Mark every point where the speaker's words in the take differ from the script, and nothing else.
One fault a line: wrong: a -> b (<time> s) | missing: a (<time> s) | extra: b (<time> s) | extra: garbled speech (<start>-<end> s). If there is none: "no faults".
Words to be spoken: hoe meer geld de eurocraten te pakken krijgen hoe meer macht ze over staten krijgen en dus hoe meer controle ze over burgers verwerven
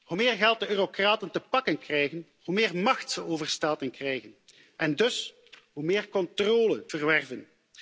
missing: ze over burgers (6.9 s)